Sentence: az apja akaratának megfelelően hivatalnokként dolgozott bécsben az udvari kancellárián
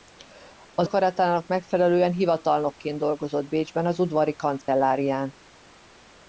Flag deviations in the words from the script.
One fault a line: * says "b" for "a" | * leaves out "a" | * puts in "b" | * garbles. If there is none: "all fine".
* leaves out "apja"